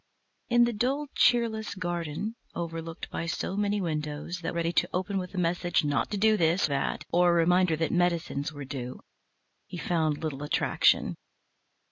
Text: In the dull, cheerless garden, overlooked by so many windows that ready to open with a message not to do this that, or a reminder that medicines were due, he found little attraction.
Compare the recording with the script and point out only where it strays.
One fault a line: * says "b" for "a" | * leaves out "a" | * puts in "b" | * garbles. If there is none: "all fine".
all fine